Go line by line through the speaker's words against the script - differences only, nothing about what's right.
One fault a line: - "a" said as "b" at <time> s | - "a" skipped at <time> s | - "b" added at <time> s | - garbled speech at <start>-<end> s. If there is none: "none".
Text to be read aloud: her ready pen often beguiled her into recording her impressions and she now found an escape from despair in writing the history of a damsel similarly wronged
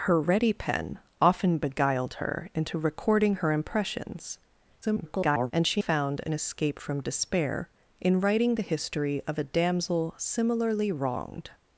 - garbled speech at 4.8-5.5 s
- "now" skipped at 5.8 s